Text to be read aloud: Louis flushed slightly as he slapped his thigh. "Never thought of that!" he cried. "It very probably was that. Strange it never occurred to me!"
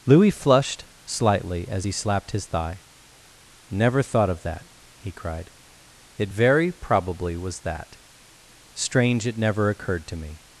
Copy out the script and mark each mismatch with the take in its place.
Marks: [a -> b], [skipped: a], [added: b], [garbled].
Louis flushed slightly as he slapped his thigh. "Never thought of that!" he cried. "It very probably was that. Strange it never occurred to me!"